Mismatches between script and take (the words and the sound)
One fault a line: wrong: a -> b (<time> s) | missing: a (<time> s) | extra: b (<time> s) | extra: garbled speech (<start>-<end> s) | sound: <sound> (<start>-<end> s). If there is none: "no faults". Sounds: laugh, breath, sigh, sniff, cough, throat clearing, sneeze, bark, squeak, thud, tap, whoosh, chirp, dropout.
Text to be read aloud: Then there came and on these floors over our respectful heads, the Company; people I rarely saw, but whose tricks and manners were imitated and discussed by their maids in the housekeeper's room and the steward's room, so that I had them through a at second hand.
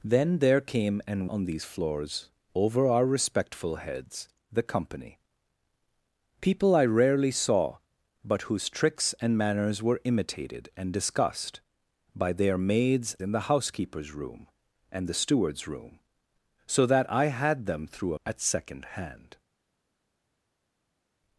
no faults